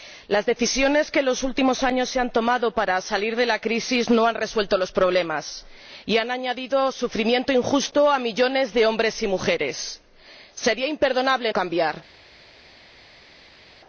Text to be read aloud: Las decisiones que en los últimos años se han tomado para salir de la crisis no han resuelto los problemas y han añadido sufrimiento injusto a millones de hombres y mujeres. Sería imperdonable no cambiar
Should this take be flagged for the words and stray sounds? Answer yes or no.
yes